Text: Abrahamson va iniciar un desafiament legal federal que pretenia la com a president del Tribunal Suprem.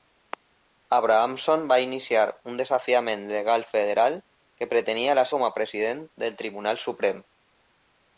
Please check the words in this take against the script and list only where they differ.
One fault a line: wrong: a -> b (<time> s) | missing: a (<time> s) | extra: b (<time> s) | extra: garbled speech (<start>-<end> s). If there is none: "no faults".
no faults